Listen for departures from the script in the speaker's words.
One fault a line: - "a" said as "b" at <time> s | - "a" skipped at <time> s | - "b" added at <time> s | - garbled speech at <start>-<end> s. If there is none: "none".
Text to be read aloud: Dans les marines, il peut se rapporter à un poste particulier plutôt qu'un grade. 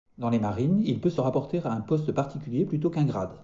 none